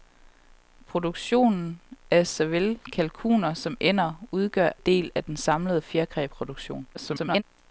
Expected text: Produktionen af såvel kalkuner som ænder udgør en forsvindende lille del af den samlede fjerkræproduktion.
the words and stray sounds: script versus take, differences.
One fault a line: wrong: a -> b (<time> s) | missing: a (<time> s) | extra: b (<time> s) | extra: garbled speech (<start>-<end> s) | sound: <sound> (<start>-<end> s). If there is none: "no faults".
missing: en forsvindende lille (4.7 s)
extra: garbled speech (6.9-7.4 s)